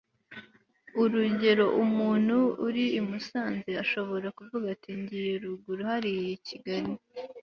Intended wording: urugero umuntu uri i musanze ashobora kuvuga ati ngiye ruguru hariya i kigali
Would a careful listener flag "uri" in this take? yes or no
no